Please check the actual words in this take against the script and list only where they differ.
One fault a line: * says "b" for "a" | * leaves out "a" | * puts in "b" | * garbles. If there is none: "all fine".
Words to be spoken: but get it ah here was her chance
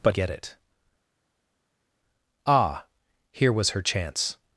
all fine